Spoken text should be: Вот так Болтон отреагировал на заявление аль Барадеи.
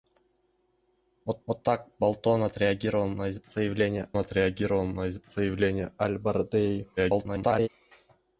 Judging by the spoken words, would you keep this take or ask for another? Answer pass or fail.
fail